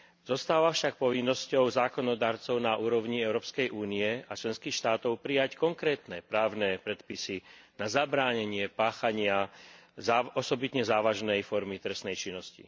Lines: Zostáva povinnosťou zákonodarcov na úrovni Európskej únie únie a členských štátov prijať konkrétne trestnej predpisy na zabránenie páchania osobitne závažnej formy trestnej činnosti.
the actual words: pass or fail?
fail